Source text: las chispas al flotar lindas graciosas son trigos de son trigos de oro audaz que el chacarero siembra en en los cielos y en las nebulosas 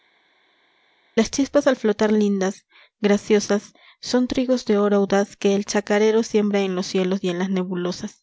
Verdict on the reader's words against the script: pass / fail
fail